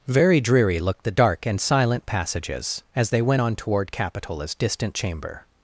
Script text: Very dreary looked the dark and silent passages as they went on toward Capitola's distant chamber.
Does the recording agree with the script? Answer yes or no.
yes